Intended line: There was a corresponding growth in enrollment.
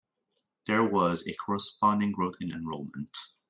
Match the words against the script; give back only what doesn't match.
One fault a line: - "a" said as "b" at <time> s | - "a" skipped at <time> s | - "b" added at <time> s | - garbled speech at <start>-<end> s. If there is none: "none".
none